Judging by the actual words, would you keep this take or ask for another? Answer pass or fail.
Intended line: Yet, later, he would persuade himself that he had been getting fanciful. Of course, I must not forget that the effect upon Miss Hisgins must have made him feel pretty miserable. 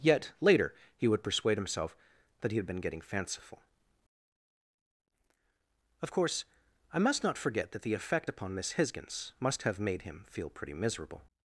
pass